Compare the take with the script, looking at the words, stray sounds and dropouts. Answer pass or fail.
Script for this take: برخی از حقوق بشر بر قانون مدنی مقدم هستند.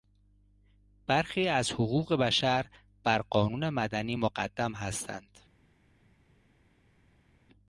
pass